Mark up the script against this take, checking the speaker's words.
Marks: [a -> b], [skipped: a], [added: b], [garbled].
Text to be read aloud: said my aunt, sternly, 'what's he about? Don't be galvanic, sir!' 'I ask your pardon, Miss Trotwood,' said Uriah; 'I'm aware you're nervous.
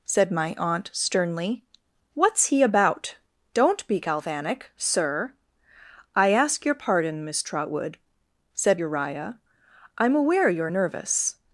said my aunt, sternly, 'what's he about? Don't be galvanic, sir!' 'I ask your pardon, Miss Trotwood,' said Uriah; 'I'm aware you're nervous.